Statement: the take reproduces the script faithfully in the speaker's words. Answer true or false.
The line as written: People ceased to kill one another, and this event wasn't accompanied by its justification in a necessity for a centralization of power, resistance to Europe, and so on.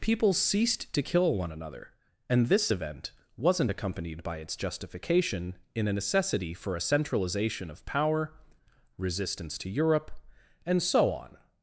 true